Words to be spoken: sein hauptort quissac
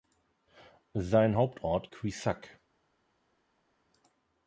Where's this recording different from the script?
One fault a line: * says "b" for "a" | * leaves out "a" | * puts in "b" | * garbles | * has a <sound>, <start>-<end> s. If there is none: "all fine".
all fine